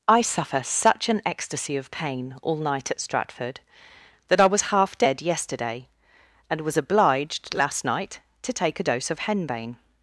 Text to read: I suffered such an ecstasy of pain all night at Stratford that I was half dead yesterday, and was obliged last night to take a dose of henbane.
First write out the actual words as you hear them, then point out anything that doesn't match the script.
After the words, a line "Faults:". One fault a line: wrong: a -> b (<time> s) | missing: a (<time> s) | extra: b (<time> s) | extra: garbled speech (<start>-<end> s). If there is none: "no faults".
I suffer such an ecstasy of pain all night at Stratford that I was half dead yesterday, and was obliged last night to take a dose of henbane.
Faults:
wrong: suffered -> suffer (0.2 s)